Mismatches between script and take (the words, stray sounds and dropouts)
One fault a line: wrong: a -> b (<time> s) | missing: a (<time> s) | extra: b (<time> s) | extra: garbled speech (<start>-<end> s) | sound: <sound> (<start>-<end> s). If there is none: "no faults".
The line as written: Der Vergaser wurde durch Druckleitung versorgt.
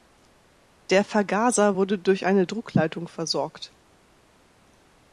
extra: eine (2.3 s)